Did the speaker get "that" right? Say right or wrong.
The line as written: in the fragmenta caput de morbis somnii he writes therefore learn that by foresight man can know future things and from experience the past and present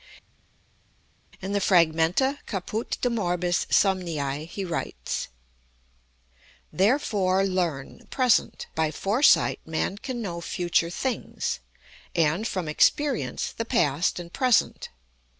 wrong